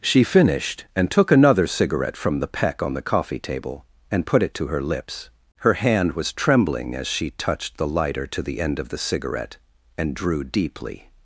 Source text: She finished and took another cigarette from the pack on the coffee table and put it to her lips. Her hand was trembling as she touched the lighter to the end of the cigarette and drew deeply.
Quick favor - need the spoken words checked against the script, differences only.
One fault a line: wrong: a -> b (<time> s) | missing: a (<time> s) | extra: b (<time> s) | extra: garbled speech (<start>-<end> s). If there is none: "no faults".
wrong: pack -> peck (2.5 s)